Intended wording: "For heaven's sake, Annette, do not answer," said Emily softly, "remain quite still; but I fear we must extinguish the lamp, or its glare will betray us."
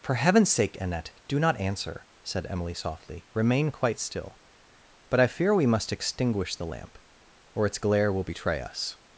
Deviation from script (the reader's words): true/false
false